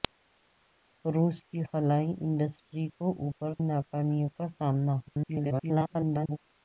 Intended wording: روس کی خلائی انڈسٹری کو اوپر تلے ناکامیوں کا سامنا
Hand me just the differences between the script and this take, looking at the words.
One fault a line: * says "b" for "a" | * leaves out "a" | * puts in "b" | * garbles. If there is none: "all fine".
* leaves out "تلے"
* garbles